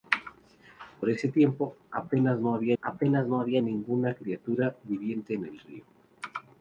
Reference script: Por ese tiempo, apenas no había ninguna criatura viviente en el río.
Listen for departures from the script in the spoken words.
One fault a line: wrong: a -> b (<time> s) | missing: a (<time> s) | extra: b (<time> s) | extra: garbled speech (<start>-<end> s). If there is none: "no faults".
extra: apenas no había (2.8 s)